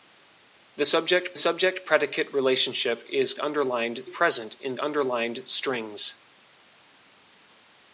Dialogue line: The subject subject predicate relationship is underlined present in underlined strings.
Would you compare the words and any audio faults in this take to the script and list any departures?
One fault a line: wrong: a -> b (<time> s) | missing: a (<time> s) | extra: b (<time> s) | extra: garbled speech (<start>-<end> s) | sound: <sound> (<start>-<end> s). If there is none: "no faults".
no faults